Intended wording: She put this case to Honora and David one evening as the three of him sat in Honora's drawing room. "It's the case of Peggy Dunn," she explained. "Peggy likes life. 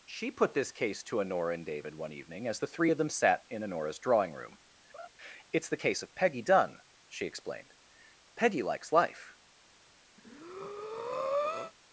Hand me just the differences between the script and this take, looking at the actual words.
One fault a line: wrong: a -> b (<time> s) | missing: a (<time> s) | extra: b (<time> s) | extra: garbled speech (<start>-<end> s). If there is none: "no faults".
wrong: him -> them (3.0 s)